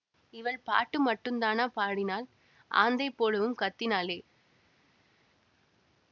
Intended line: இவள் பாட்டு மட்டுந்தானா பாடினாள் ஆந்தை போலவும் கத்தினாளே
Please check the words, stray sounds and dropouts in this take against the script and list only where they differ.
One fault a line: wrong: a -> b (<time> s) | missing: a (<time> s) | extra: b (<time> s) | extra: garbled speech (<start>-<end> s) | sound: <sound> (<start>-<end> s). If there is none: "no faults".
no faults